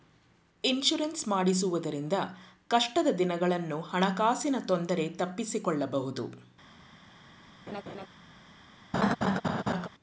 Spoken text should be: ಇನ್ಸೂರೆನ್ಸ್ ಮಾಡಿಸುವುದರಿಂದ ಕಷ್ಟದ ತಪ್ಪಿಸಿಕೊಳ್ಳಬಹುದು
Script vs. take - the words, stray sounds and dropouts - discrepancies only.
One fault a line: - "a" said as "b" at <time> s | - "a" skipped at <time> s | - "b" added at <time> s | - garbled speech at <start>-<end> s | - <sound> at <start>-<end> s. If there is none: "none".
- "ದಿನಗಳನ್ನು ಹಣಕಾಸಿನ ತೊಂದರೆ" added at 3.1 s
- laugh at 7.7-8.1 s
- laugh at 8.9-9.9 s